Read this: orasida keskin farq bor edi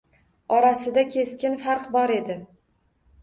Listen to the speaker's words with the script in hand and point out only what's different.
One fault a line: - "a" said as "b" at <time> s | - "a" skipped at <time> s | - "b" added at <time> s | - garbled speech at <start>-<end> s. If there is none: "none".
none